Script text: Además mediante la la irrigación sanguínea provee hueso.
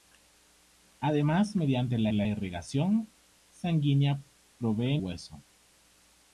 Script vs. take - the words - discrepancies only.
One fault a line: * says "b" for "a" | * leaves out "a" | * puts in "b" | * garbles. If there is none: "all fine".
all fine